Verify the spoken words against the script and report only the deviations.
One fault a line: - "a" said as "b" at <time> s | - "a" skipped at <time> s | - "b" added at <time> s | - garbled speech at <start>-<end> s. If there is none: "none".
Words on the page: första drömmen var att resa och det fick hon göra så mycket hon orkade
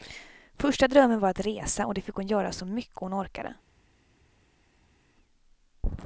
none